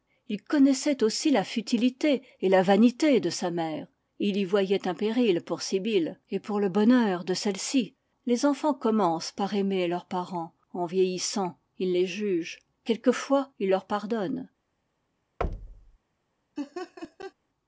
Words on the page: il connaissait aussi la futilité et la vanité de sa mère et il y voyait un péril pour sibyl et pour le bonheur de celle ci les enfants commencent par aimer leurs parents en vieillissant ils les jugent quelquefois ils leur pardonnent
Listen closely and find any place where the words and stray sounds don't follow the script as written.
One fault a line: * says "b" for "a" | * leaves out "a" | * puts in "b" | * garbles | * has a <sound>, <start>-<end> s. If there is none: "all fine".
* has a thud, 15.4-16.0 s
* has a laugh, 16.6-17.3 s